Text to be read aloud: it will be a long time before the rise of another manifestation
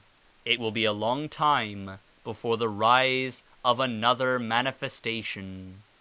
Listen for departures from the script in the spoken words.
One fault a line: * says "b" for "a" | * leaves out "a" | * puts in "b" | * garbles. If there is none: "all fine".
all fine